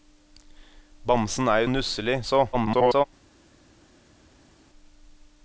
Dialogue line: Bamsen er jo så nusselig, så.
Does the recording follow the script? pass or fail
fail